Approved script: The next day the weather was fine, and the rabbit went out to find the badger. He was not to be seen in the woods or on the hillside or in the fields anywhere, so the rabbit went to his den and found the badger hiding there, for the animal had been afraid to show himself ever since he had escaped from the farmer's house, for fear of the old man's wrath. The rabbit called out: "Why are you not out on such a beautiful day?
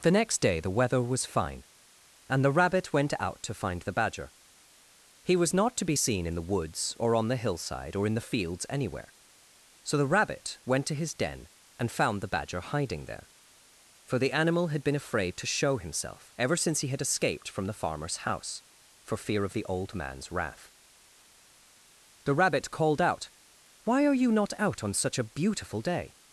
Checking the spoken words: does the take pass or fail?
pass